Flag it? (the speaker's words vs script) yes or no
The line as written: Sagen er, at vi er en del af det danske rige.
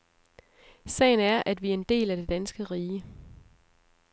no